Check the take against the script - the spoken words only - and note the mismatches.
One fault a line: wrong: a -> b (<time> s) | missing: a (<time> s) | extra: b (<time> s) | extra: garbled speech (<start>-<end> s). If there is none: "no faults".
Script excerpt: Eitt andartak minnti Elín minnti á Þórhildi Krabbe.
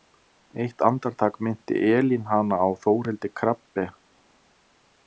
wrong: minnti -> hana (2.3 s)